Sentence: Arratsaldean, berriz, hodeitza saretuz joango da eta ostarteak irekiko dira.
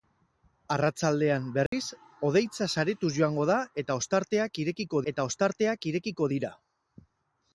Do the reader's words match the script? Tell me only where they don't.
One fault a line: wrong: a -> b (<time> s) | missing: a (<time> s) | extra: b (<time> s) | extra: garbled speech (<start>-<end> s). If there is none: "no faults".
extra: eta ostarteak irekiko (5.1 s)